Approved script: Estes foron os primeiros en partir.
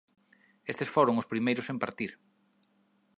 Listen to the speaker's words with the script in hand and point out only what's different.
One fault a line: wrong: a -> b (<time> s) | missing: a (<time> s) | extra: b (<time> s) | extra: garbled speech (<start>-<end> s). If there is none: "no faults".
no faults